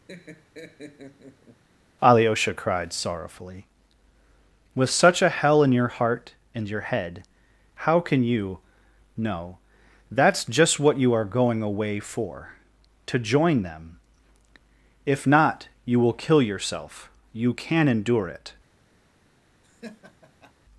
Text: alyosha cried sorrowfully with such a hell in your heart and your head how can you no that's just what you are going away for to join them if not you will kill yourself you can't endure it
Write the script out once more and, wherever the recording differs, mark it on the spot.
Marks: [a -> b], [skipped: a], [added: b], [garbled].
alyosha cried sorrowfully with such a hell in your heart and your head how can you no that's just what you are going away for to join them if not you will kill yourself you [can't -> can] endure it